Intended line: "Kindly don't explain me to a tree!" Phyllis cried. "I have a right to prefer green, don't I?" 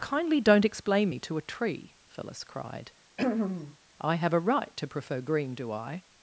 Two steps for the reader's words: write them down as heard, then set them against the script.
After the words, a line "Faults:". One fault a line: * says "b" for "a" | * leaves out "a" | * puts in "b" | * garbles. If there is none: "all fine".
"Kindly don't explain me to a tree!" Phyllis cried. "I have a right to prefer green, do I?"
Faults:
* says "do" for "don't"